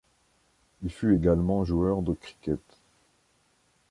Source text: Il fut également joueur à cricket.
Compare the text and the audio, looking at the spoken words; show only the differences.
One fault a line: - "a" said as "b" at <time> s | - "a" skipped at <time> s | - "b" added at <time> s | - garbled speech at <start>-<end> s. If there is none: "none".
- "à" said as "de" at 2.0 s